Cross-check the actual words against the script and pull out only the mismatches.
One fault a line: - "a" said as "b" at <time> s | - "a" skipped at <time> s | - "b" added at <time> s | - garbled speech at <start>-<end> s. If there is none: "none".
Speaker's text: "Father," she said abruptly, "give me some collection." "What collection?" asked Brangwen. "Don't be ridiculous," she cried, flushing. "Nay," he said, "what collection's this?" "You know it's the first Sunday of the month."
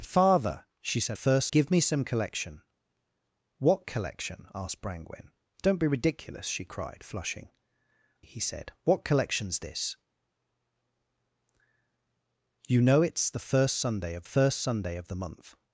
- "abruptly" said as "first" at 1.1 s
- "Nay" skipped at 7.5 s
- "first Sunday of" added at 14.2 s